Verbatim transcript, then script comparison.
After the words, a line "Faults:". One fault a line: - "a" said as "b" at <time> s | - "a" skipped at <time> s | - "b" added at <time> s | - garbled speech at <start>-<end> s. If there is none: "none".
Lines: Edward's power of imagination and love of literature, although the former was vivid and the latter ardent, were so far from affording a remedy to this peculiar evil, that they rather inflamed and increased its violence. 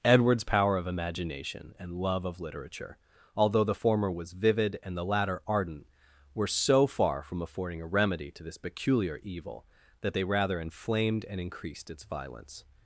Edward's power of imagination and love of literature, although the former was vivid and the latter ardent, were so far from affording a remedy to this peculiar evil, that they rather inflamed and increased its violence.
Faults:
none